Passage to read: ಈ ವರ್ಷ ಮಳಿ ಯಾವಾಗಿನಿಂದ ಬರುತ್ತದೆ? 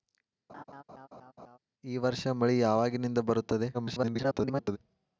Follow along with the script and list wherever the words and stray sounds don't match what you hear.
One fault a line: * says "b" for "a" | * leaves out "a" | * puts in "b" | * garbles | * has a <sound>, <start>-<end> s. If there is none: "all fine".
* has a laugh, 0.5-1.6 s
* garbles